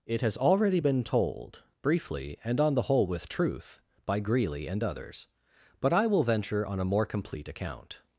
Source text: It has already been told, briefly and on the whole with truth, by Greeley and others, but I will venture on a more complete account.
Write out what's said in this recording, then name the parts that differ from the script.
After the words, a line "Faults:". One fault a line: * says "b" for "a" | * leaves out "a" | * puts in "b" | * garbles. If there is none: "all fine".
It has already been told, briefly and on the whole with truth, by Greeley and others, but I will venture on a more complete account.
Faults:
all fine